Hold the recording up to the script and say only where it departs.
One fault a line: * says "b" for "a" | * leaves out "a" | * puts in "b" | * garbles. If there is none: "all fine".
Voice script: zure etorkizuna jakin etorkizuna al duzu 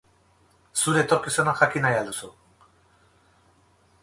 * says "nahi" for "etorkizuna"